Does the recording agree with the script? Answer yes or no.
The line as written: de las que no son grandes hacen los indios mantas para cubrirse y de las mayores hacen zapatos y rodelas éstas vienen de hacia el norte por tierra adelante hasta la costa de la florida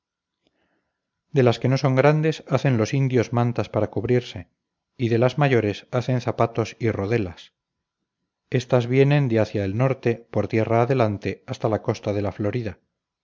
yes